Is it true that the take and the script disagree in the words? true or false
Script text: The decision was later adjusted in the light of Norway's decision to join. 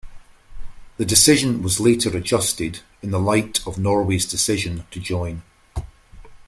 false